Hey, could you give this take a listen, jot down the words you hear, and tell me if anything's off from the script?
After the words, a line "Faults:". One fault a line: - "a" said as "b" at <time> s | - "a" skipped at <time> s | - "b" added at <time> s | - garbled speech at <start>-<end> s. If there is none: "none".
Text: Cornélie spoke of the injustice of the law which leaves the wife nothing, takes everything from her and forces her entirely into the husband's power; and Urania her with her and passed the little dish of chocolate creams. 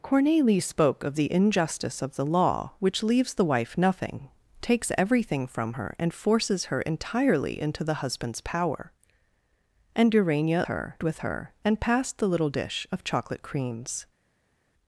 Cornélie spoke of the injustice of the law which leaves the wife nothing, takes everything from her and forces her entirely into the husband's power; and Urania her with her and passed the little dish of chocolate creams.
Faults:
none